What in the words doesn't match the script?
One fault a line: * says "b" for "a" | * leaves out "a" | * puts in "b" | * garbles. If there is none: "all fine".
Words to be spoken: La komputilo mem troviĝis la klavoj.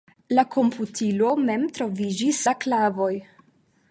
all fine